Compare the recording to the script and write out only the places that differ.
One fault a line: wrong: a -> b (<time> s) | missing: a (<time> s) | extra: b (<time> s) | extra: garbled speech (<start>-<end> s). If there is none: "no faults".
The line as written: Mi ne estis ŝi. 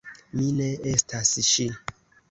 wrong: estis -> estas (0.9 s)